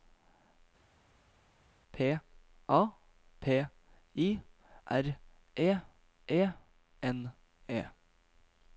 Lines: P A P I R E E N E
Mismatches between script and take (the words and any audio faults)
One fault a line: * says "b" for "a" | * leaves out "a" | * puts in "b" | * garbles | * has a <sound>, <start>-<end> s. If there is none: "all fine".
all fine